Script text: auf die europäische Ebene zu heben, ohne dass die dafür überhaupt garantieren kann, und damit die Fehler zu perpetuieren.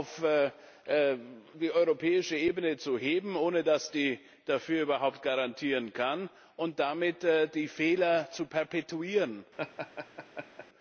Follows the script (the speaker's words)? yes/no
yes